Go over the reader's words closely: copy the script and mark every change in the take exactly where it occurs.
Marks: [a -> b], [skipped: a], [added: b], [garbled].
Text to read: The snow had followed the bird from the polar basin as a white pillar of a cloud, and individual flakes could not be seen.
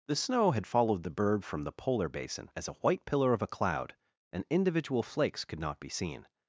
The snow had followed the bird from the polar basin as a white pillar of a cloud, and individual flakes could not be seen.